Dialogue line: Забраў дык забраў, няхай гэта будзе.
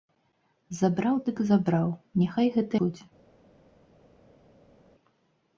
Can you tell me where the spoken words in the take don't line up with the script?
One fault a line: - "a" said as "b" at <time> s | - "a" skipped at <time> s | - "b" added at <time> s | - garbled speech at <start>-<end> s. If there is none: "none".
none